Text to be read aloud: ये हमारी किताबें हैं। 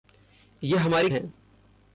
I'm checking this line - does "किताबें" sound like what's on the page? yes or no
no